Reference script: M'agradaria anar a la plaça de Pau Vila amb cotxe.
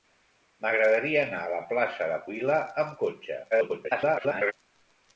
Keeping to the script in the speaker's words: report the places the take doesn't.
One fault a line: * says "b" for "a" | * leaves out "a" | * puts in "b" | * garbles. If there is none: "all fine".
* leaves out "Pau"
* garbles